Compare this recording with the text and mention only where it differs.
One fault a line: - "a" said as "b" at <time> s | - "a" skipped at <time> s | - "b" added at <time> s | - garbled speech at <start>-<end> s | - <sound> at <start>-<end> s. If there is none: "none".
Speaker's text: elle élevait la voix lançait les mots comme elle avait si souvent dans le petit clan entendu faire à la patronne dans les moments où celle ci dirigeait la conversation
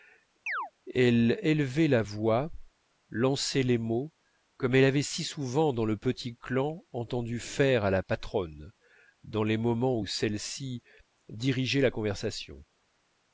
- chirp at 0.5-0.7 s